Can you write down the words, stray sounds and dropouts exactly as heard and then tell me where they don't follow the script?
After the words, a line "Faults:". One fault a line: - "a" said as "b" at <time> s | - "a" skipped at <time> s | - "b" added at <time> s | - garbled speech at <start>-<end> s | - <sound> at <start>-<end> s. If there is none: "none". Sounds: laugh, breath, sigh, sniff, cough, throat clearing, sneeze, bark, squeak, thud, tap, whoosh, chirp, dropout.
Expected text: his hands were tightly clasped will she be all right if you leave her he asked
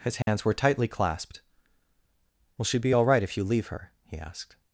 his hands were tightly clasped will she be all right if you leave her he asked
Faults:
- dropout at 0.2-0.3 s